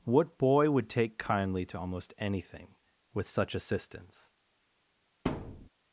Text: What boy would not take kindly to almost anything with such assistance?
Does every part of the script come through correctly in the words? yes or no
no